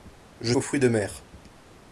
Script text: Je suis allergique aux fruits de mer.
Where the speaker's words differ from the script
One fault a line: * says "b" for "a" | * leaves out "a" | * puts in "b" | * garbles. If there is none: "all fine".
* leaves out "suis allergique"